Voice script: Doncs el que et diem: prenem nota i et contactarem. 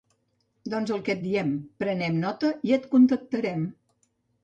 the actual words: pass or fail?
pass